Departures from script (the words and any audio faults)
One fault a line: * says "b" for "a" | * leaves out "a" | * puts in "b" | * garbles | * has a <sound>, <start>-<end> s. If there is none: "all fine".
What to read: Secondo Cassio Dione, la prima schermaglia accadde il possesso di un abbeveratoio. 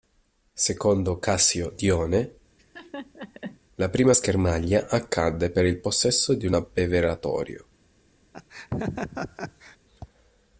* has a laugh, 2.6-3.6 s
* puts in "per"
* has a laugh, 8.3-9.8 s